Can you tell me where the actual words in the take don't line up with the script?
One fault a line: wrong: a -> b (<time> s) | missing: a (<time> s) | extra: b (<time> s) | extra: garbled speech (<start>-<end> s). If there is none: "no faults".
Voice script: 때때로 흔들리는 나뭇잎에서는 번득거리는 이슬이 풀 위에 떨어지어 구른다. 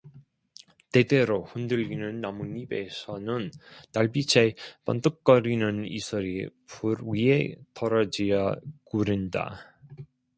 extra: 달빛에 (3.9 s)